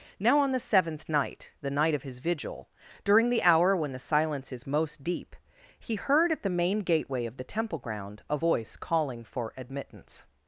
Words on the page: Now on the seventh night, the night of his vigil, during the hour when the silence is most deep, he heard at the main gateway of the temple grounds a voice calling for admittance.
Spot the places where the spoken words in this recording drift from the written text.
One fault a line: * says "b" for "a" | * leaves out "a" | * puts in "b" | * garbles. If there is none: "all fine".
* says "ground" for "grounds"